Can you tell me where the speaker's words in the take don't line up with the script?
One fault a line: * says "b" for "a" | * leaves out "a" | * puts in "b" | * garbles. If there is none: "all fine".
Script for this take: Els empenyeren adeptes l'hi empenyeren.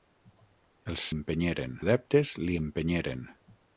all fine